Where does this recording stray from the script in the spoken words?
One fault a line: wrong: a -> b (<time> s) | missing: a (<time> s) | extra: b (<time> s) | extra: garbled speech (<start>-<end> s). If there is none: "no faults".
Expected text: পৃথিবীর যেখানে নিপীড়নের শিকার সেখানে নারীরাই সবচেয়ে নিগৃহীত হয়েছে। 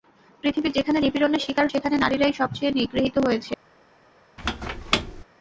no faults